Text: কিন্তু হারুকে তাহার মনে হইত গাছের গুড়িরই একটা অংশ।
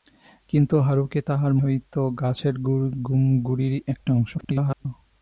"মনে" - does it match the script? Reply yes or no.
no